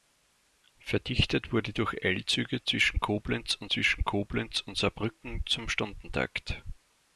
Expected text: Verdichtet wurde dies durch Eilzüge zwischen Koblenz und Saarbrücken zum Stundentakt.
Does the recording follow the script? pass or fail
fail